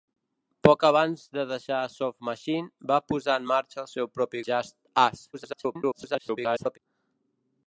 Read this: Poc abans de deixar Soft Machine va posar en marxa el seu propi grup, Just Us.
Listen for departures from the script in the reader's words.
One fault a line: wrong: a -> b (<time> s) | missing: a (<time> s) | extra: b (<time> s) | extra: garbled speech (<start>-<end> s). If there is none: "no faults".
missing: grup (4.4 s)
extra: garbled speech (5.3-6.8 s)